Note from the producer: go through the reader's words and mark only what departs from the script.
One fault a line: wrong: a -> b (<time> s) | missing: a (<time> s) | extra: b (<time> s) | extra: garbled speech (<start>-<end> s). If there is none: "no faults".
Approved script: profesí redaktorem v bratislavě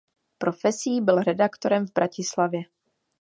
extra: byl (1.0 s)